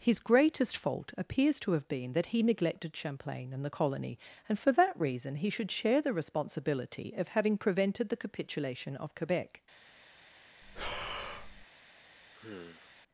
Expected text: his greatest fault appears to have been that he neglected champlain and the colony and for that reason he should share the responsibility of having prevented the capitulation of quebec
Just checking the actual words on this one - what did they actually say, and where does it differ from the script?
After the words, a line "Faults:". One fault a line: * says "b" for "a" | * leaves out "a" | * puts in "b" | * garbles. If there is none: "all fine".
his greatest fault appears to have been that he neglected champlain and the colony and for that reason he should share the responsibility of having prevented the capitulation of quebec
Faults:
all fine